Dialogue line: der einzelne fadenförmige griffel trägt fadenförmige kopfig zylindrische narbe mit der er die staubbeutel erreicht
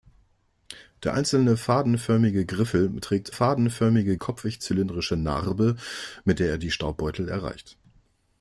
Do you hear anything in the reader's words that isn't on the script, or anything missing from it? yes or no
no